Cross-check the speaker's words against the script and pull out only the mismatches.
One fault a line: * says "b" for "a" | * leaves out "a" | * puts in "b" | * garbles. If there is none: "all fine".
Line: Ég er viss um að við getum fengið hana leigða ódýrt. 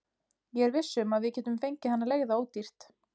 all fine